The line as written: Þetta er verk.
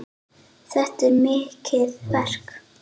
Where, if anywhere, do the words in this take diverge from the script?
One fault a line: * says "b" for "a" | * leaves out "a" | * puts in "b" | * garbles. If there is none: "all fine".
* puts in "mikið"